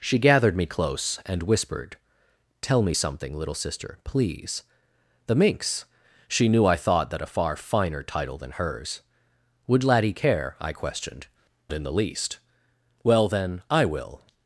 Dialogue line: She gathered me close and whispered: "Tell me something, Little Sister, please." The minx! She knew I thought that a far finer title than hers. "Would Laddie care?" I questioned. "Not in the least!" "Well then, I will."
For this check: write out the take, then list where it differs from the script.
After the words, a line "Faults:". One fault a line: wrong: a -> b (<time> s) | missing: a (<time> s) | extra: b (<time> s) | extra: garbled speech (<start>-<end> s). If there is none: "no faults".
She gathered me close and whispered: "Tell me something, Little Sister, please." The minx! She knew I thought that a far finer title than hers. "Would Laddie care?" I questioned. "In the least!" "Well then, I will."
Faults:
missing: Not (11.3 s)